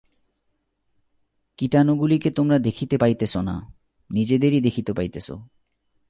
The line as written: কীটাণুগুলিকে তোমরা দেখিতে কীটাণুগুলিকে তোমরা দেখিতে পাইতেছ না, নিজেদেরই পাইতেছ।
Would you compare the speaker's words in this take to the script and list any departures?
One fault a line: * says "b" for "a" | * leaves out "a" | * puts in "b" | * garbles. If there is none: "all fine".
* leaves out "কীটাণুগুলিকে তোমরা দেখিতে"
* puts in "দেখিতে"